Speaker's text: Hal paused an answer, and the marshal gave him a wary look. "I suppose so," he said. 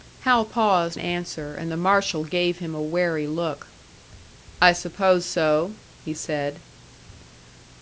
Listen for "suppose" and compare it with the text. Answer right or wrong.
right